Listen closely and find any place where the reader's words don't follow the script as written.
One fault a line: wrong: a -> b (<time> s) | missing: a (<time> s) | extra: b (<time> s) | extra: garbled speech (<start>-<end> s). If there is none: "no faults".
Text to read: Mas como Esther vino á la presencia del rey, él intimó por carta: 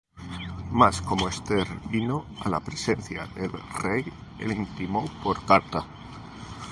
no faults